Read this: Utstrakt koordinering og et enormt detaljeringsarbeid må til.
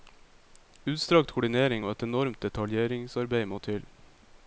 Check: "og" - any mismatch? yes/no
no